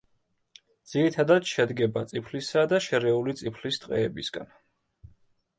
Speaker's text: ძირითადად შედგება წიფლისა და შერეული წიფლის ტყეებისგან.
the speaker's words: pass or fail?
pass